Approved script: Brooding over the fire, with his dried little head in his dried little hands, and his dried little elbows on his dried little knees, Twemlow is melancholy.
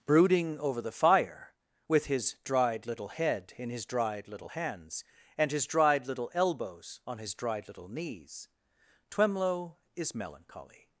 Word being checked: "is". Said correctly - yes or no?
yes